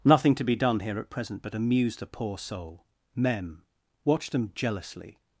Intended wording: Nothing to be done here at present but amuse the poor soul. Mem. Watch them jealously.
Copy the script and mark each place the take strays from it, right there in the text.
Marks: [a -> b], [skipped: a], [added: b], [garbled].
Nothing to be done here at present but amuse the poor soul. Mem. Watch them jealously.